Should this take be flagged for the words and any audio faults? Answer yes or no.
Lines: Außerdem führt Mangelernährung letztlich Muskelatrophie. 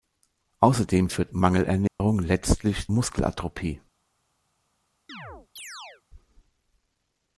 yes